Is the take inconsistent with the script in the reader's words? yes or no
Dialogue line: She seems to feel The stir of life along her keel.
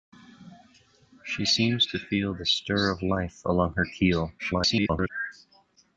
yes